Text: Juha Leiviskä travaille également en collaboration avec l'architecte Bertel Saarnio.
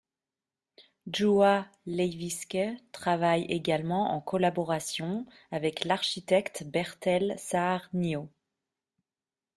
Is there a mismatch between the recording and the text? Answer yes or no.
no